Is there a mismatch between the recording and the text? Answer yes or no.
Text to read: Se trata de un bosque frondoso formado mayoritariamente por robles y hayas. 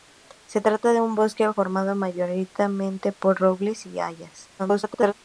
yes